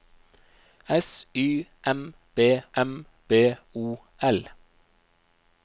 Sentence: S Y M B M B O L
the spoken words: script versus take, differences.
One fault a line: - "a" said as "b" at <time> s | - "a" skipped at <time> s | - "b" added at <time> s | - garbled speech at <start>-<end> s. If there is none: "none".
none